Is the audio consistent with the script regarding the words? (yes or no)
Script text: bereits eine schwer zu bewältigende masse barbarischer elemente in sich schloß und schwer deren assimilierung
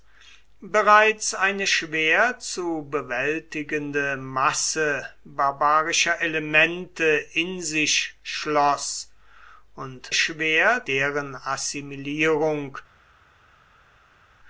yes